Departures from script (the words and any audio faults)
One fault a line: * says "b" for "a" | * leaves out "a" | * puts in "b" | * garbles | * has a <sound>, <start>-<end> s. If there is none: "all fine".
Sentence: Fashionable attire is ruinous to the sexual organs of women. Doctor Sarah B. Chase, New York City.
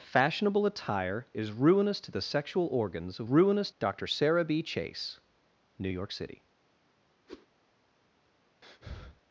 * says "ruinous" for "women"
* has a whoosh, 7.3-7.5 s
* has a breath, 8.6-9.2 s